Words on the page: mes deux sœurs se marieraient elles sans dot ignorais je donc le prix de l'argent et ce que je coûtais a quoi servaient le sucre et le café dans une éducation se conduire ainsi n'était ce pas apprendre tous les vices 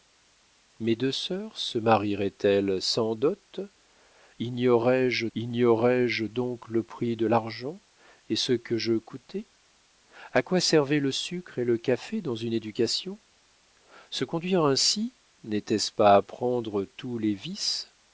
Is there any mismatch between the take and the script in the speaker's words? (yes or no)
yes